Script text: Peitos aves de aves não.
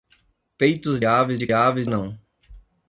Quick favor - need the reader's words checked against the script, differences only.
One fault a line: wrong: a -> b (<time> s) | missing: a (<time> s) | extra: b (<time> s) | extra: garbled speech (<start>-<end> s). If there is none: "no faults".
no faults